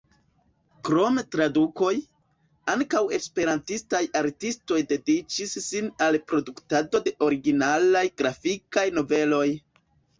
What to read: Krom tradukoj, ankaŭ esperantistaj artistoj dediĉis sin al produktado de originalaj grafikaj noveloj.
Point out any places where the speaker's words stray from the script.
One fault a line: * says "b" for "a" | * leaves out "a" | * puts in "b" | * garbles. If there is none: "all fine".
all fine